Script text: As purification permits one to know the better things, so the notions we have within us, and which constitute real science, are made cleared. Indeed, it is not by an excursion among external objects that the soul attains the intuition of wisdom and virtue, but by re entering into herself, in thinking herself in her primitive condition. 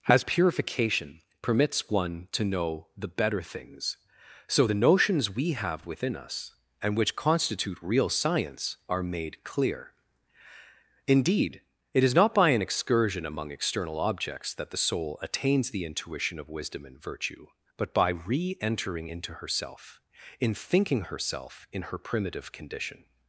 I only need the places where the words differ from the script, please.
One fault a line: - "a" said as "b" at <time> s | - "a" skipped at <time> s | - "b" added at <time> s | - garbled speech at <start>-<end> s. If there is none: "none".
- "cleared" said as "clear" at 9.4 s